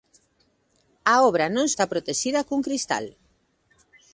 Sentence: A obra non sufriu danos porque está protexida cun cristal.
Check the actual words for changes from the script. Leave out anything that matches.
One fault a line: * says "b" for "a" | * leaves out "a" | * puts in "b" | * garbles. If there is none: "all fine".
* leaves out "sufriu danos porque"